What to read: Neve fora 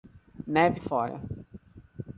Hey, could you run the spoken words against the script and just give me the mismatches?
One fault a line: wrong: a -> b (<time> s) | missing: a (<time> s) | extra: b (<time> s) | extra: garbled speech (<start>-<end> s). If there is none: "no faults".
no faults